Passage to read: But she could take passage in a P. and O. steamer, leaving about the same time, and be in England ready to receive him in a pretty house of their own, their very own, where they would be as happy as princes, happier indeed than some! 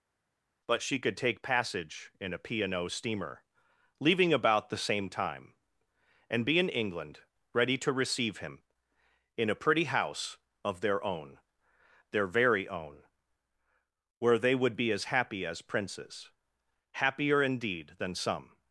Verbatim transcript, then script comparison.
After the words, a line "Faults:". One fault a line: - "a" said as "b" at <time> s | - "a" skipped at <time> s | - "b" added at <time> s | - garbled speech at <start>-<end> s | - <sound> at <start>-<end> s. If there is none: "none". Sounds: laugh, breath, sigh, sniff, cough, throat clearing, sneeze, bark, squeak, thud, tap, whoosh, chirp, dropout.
But she could take passage in a P. and O. steamer, leaving about the same time, and be in England ready to receive him in a pretty house of their own, their very own, where they would be as happy as princes, happier indeed than some!
Faults:
none